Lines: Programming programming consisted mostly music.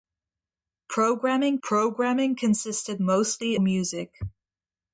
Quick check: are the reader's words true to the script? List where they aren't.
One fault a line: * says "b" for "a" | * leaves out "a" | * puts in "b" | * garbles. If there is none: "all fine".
all fine